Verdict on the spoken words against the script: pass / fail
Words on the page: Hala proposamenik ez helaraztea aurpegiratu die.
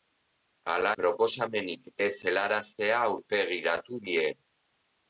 pass